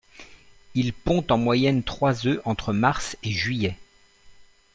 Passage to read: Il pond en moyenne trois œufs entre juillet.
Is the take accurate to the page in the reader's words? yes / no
no